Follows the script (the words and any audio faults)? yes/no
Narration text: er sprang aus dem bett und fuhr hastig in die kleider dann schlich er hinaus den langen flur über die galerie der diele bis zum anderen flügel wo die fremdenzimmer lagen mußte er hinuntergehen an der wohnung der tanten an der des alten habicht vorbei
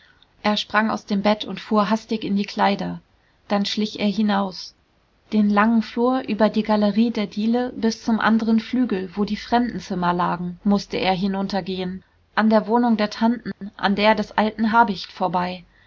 no